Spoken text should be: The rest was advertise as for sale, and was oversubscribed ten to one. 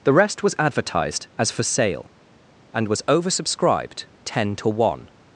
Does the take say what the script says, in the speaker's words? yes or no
no